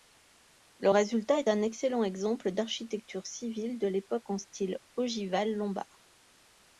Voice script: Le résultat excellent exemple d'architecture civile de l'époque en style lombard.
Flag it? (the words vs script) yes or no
yes